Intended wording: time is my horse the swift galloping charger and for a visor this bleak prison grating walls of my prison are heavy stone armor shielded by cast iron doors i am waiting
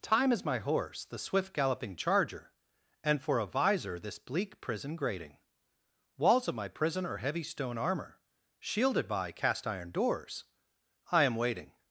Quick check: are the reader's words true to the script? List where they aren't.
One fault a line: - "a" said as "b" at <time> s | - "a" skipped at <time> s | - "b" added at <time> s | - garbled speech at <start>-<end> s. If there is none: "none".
none